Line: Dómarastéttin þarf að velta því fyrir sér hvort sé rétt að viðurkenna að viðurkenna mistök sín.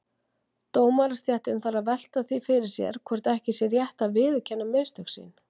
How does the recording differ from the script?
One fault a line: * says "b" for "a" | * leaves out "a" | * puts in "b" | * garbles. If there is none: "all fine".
* puts in "ekki"
* leaves out "að viðurkenna"